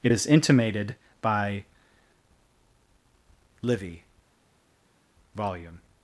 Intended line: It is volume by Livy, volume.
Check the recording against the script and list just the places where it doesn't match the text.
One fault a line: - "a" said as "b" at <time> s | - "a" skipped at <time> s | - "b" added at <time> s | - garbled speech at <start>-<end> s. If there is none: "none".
- "volume" said as "intimated" at 0.3 s